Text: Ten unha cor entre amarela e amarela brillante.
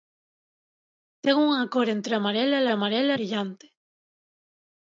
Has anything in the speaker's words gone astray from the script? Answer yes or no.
no